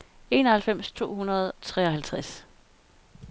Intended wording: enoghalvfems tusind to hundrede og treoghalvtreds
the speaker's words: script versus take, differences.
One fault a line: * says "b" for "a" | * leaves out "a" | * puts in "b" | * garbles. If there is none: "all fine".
* leaves out "tusind"
* leaves out "og"